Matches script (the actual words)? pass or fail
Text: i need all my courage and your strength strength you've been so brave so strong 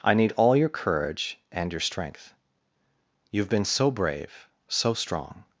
fail